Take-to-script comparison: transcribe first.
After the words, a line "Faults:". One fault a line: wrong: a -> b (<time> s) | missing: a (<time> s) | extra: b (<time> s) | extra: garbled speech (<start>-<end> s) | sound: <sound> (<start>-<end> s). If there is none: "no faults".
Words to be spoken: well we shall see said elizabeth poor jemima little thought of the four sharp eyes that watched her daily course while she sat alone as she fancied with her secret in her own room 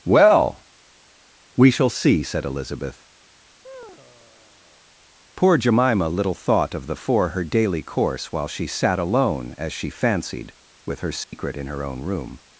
well we shall see said elizabeth poor jemima little thought of the four her daily course while she sat alone as she fancied with her secret in her own room
Faults:
sound: sigh (3.6-4.8 s)
missing: sharp eyes that watched (7.3 s)
sound: dropout (11.2-11.3 s)